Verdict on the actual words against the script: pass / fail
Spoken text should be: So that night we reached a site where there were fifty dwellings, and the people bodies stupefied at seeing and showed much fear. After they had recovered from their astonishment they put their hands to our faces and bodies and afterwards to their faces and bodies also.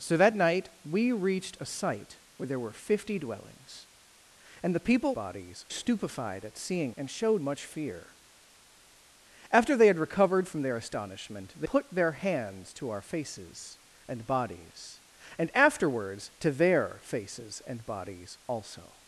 pass